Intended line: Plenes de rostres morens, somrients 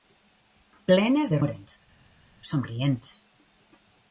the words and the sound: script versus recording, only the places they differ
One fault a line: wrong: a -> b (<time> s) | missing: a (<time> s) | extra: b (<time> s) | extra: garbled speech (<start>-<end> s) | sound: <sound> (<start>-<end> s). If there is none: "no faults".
missing: rostres (1.4 s)